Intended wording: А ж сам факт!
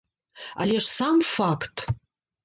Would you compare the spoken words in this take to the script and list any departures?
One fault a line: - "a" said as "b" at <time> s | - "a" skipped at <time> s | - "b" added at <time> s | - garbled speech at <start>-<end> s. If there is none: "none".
- "А" said as "Але" at 0.6 s